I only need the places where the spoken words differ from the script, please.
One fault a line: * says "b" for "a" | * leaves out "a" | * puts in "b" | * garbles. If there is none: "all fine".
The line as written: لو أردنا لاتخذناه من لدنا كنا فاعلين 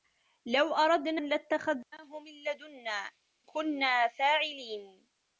all fine